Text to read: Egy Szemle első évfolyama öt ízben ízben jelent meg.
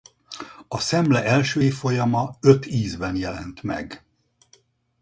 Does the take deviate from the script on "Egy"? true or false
true